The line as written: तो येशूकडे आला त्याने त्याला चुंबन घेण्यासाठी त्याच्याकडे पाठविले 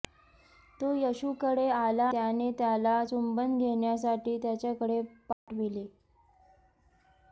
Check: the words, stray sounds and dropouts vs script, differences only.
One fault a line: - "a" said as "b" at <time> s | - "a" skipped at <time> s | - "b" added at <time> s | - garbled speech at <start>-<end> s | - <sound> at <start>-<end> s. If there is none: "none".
- dropout at 5.3-5.5 s